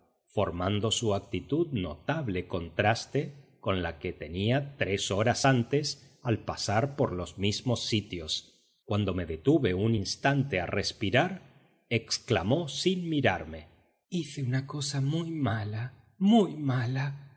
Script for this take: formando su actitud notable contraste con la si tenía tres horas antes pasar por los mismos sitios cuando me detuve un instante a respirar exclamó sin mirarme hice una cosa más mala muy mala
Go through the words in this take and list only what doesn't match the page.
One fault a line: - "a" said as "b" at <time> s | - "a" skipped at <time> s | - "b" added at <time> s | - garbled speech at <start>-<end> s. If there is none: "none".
- "si" said as "que" at 4.0 s
- "al" added at 6.2 s
- "más" said as "muy" at 15.0 s